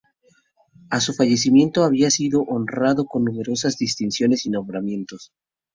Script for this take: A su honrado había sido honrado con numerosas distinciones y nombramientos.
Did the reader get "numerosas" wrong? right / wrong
right